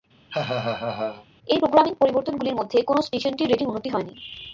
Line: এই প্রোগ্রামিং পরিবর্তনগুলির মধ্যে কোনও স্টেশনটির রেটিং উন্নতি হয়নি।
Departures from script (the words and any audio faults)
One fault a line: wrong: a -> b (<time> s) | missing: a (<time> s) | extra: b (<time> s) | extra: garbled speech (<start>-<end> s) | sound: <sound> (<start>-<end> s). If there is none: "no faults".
sound: laugh (0.3-1.3 s)